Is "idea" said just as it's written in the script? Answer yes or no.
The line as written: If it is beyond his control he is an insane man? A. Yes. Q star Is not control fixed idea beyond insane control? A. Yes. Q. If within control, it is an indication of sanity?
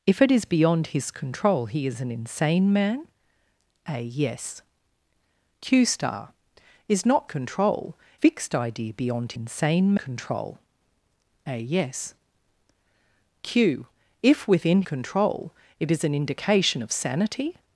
yes